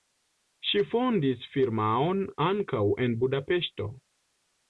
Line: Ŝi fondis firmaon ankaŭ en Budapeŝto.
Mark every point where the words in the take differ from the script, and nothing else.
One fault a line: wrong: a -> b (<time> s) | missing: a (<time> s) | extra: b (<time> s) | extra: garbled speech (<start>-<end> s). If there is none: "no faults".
no faults